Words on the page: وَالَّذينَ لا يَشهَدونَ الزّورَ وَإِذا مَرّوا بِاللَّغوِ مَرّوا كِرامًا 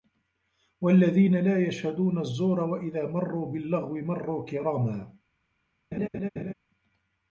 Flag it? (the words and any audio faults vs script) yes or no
yes